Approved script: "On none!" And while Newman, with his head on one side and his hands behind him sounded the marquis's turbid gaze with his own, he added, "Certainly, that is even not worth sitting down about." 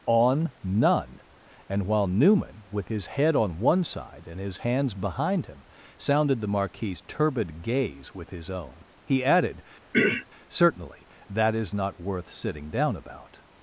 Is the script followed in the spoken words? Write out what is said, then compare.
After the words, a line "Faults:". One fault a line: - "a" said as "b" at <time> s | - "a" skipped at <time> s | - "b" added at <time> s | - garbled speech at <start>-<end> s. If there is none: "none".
"On none!" And while Newman, with his head on one side and his hands behind him sounded the marquis's turbid gaze with his own, he added, "Certainly, that is not worth sitting down about."
Faults:
- "even" skipped at 11.7 s